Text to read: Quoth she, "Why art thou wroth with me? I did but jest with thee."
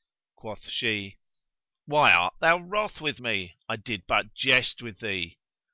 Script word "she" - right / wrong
right